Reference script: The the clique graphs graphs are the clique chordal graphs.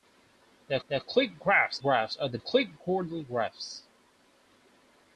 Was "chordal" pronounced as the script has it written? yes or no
yes